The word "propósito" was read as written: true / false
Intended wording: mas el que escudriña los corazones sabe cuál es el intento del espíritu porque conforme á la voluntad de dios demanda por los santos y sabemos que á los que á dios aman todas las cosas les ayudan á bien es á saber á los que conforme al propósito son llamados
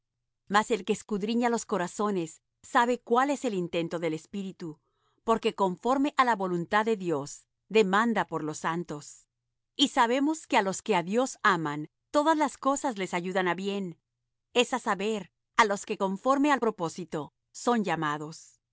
true